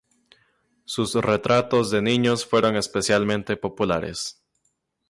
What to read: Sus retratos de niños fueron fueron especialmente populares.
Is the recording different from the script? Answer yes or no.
yes